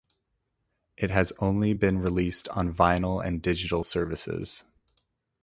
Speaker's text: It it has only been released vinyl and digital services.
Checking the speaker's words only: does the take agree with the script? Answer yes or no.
no